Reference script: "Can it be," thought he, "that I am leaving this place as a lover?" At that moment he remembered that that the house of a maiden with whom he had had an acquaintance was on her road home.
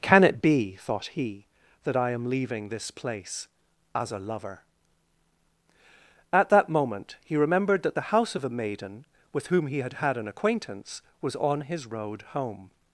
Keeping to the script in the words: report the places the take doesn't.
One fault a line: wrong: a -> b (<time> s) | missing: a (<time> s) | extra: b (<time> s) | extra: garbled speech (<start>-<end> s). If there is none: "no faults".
missing: that (8.0 s)
wrong: her -> his (11.6 s)